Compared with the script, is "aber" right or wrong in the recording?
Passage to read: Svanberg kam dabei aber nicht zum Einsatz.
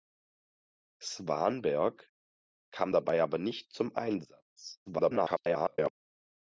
right